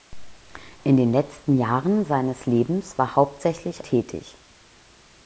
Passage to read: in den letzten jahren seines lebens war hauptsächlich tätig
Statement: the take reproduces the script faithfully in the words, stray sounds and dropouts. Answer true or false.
true